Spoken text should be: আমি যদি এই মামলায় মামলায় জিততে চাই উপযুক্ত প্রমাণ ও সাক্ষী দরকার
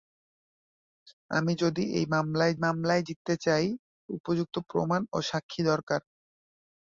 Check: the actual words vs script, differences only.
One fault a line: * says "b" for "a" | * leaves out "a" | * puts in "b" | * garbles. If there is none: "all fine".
all fine